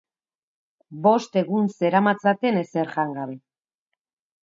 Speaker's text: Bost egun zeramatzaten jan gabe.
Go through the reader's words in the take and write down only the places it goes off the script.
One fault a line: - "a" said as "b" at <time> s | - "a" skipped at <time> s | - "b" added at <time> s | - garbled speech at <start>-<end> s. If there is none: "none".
- "ezer" added at 2.6 s